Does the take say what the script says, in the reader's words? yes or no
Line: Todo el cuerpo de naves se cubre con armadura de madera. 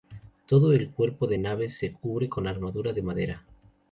yes